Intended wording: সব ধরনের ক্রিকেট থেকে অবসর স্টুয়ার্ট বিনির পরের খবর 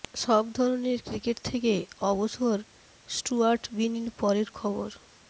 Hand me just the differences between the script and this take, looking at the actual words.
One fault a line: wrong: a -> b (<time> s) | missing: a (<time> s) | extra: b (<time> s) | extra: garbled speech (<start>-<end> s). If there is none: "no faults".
no faults